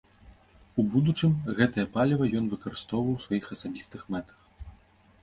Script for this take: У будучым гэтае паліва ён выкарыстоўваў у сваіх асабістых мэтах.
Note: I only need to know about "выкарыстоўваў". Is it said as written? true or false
true